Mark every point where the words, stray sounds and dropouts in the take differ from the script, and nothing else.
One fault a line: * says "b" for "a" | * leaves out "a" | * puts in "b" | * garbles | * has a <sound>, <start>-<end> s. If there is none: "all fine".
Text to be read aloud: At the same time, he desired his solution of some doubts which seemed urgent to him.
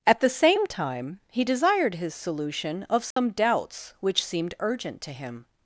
* has a dropout, 3.1-3.2 s